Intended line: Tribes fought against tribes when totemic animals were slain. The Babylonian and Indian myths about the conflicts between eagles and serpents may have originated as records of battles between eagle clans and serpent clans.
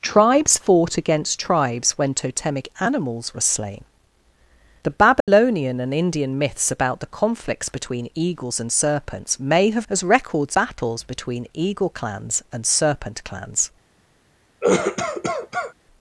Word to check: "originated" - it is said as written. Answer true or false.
false